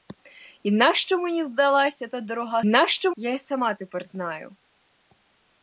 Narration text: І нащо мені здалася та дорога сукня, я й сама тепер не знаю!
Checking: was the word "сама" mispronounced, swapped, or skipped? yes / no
no